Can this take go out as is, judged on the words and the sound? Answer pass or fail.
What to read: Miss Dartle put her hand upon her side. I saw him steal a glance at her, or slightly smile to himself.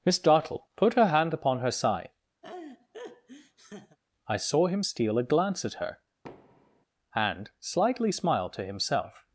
fail